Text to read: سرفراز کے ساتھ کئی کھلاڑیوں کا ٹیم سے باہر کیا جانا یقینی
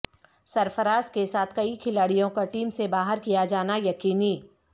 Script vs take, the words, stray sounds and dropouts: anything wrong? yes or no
no